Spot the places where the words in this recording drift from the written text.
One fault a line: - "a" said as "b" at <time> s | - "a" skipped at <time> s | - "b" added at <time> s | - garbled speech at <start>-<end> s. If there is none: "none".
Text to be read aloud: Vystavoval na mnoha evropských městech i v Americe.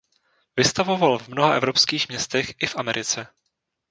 - "na" said as "v" at 1.2 s